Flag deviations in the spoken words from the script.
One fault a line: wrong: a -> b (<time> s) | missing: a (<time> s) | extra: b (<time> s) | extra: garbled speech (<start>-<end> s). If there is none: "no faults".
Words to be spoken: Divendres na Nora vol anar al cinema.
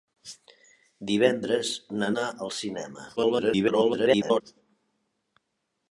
missing: Nora vol (2.1 s)
extra: garbled speech (3.2-4.4 s)